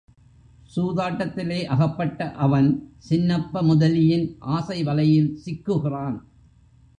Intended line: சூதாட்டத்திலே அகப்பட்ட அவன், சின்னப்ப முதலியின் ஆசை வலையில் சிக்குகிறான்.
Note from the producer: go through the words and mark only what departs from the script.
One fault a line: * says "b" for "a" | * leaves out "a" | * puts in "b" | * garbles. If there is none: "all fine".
all fine